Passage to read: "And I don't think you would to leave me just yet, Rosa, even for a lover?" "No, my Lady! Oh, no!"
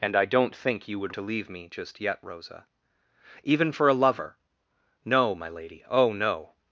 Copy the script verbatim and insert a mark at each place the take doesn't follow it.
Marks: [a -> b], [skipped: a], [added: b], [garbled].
"And I don't think you would to leave me just yet, Rosa, even for a lover?" "No, my Lady! Oh, no!"